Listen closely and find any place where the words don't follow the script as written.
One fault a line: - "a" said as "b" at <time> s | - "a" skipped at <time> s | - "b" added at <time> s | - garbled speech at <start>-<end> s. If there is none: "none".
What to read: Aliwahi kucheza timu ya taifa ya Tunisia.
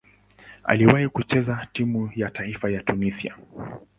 none